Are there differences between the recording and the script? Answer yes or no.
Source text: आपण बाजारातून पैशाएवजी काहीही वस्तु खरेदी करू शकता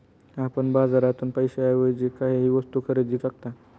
yes